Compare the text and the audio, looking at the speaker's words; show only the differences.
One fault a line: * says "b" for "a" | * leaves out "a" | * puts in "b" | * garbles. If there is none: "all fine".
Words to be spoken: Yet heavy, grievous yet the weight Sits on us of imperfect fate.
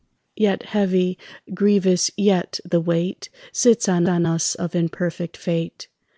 * puts in "on"